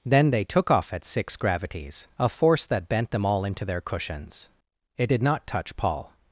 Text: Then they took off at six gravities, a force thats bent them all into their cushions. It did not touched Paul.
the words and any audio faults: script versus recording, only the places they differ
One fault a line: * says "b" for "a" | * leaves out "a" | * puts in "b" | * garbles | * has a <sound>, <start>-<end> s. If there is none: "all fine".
* says "that" for "thats"
* says "touch" for "touched"